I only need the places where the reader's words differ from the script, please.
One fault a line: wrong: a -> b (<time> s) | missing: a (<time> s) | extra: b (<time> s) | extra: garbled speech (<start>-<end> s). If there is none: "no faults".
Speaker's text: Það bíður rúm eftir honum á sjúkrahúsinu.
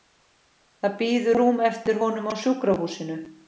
no faults